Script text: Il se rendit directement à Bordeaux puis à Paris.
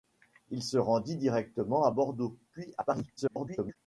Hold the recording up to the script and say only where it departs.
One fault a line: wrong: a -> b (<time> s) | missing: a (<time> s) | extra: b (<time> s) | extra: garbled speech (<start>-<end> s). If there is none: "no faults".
extra: garbled speech (3.2-3.8 s)